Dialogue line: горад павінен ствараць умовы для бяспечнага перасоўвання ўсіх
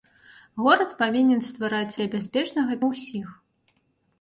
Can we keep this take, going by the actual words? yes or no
no